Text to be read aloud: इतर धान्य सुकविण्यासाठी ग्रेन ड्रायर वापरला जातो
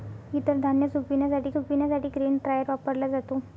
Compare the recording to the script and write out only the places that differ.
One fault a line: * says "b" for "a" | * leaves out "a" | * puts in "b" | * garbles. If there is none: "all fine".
* puts in "सुकविण्यासाठी"